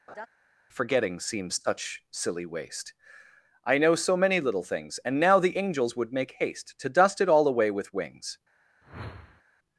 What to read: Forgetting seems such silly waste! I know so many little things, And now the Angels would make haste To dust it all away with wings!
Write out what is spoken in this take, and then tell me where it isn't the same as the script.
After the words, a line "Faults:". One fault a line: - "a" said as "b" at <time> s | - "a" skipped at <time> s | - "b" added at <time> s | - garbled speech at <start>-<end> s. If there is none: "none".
Forgetting seems such silly waste! I know so many little things, And now the Angels would make haste To dust it all away with wings!
Faults:
none